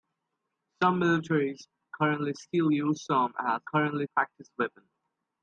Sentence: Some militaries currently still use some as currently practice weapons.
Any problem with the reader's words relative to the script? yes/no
no